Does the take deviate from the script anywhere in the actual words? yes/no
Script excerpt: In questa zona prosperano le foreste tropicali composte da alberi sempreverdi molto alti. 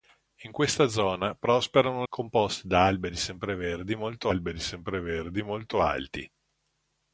yes